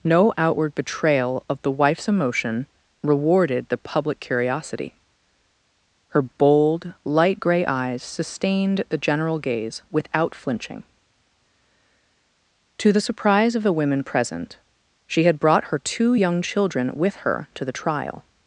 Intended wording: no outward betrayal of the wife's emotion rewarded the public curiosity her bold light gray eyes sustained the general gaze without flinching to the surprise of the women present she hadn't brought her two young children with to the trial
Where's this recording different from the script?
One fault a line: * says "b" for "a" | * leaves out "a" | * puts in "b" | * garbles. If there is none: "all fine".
* says "had" for "hadn't"
* puts in "her"